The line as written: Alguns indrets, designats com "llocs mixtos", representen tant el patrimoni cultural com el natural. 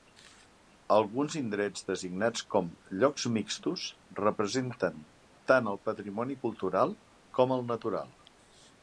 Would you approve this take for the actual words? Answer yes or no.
yes